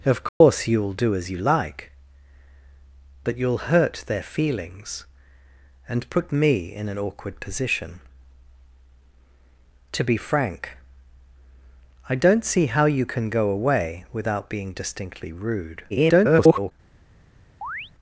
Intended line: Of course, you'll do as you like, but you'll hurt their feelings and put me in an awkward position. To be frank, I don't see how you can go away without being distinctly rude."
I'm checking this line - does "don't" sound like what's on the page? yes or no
yes